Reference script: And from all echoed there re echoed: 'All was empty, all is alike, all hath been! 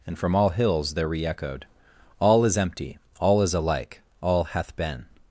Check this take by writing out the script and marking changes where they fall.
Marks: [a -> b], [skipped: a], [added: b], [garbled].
And from all [echoed -> hills] there re echoed: 'All [was -> is] empty, all is alike, all hath been!